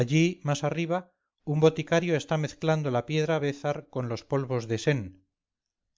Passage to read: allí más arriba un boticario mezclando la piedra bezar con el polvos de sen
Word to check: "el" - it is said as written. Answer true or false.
false